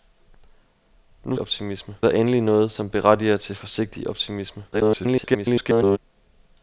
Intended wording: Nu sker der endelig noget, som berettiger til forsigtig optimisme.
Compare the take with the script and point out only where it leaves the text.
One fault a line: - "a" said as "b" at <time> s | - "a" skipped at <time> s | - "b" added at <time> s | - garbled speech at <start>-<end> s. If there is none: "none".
- "sker" said as "optimisme" at 1.4 s
- garbled speech at 4.7-6.0 s